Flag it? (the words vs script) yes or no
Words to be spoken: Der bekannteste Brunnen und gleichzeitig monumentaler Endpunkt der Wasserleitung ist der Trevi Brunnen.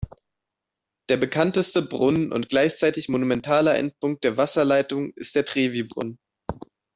no